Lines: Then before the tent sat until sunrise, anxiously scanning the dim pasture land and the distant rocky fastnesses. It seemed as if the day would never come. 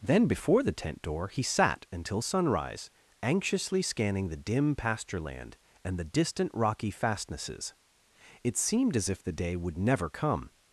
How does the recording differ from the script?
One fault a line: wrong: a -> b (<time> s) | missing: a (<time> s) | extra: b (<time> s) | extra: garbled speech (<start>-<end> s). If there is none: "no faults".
extra: door he (1.0 s)